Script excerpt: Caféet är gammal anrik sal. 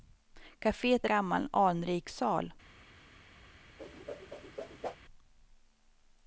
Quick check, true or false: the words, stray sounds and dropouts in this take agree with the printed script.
false